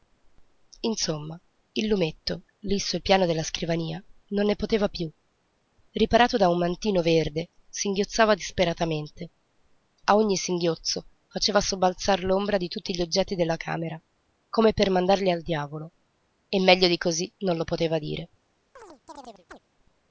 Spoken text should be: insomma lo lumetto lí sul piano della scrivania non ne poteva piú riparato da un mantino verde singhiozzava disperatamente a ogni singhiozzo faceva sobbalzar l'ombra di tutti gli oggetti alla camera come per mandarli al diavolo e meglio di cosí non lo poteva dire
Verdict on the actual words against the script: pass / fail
fail